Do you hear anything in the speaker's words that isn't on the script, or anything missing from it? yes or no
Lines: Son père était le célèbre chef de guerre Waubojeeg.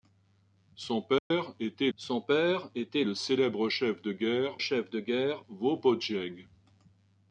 yes